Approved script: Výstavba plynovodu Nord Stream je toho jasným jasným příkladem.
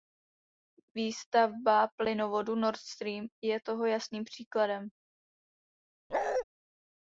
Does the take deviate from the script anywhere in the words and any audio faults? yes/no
yes